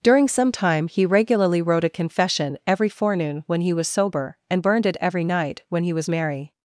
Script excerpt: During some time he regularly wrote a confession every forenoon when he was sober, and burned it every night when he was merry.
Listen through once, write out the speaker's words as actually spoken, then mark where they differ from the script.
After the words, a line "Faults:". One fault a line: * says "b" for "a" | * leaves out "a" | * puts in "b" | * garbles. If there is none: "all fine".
During some time he regularly wrote a confession every forenoon when he was sober, and burned it every night when he was merry.
Faults:
all fine